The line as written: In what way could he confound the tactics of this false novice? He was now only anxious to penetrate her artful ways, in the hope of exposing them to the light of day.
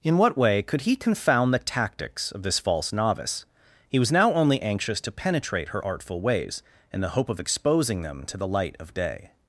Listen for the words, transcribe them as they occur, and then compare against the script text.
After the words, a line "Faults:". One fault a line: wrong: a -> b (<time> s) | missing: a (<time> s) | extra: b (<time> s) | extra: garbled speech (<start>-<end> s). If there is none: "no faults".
In what way could he confound the tactics of this false novice? He was now only anxious to penetrate her artful ways, in the hope of exposing them to the light of day.
Faults:
no faults